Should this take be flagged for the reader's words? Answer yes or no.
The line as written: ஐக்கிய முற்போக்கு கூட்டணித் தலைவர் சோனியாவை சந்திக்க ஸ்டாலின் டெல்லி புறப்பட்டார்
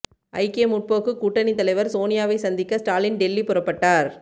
no